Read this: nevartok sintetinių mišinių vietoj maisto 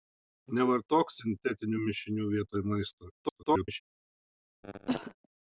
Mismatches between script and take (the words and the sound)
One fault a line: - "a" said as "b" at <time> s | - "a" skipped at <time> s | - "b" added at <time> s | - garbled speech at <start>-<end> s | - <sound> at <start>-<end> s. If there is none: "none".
- garbled speech at 3.2-3.8 s
- cough at 4.6-5.1 s